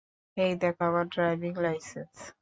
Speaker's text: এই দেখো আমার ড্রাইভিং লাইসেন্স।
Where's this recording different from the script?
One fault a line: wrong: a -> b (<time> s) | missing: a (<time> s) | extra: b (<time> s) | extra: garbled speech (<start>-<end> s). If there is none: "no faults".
no faults